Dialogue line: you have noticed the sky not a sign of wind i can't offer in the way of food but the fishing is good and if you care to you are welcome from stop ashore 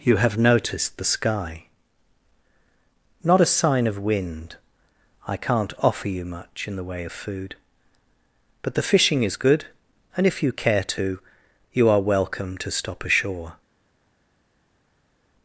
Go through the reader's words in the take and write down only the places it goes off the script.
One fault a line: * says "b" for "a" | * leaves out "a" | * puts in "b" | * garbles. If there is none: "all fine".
* puts in "you much"
* says "to" for "from"